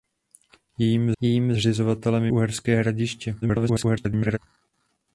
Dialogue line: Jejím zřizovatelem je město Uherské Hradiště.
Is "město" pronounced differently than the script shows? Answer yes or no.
yes